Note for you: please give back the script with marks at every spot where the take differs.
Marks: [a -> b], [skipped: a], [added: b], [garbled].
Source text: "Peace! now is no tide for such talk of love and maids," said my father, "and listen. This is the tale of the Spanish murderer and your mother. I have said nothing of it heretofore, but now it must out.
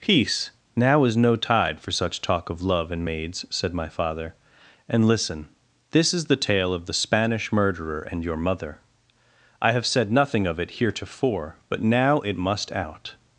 "Peace! now is no tide for such talk of love and maids," said my father, "and listen. This is the tale of the Spanish murderer and your mother. I have said nothing of it heretofore, but now it must out.